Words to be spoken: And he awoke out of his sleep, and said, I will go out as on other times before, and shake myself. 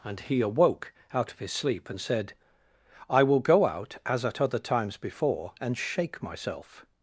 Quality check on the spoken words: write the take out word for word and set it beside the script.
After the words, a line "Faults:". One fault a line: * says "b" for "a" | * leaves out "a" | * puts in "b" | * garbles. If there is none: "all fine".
And he awoke out of his sleep, and said, I will go out as at other times before, and shake myself.
Faults:
* says "at" for "on"